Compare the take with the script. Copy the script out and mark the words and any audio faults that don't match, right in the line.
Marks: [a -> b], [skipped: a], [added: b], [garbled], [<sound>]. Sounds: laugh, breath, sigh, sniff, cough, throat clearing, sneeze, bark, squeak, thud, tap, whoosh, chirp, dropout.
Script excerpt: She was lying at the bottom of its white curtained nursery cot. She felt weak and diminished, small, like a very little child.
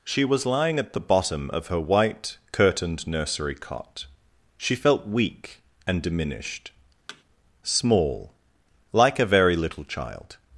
She was lying at the bottom of [its -> her] white curtained nursery cot. She felt weak and diminished, [thud] small, like a very little child.